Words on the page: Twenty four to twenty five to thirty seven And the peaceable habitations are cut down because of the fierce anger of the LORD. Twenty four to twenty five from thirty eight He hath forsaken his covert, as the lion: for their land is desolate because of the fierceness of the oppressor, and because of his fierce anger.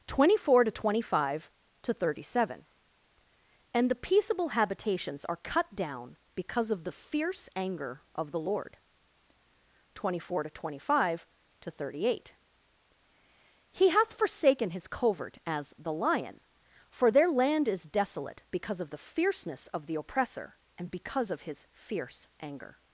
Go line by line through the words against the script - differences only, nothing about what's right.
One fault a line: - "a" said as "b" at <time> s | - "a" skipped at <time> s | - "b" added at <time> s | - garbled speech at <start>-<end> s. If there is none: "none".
- "from" said as "to" at 11.6 s